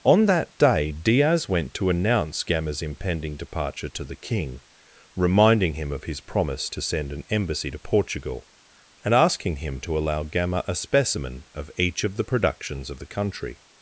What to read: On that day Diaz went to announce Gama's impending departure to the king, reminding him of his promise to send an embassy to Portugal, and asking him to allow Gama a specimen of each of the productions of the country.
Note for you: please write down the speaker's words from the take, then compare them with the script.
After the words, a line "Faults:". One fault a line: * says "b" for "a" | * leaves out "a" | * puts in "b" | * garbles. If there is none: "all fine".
On that day Diaz went to announce Gama's impending departure to the king, reminding him of his promise to send an embassy to Portugal, and asking him to allow Gama a specimen of each of the productions of the country.
Faults:
all fine